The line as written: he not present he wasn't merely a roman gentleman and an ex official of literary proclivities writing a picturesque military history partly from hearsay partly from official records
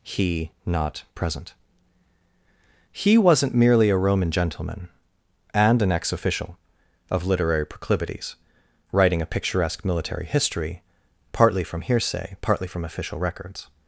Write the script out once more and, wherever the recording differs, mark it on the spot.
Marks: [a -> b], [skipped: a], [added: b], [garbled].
he not present he wasn't merely a roman gentleman and an ex official of literary proclivities writing a picturesque military history partly from hearsay partly from official records